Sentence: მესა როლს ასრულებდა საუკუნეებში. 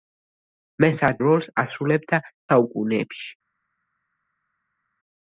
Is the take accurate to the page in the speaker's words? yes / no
yes